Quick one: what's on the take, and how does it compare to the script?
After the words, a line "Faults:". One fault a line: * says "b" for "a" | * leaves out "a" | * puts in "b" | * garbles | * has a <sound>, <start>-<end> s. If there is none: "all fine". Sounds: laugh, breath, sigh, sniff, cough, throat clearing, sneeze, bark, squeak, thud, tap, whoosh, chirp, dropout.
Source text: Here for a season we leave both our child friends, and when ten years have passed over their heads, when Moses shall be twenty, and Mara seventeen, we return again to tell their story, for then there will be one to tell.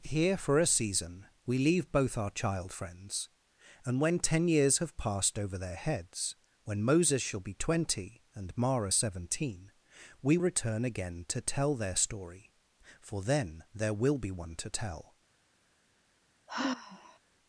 Here for a season we leave both our child friends, and when ten years have passed over their heads, when Moses shall be twenty, and Mara seventeen, we return again to tell their story, for then there will be one to tell.
Faults:
* has a sigh, 16.5-17.2 s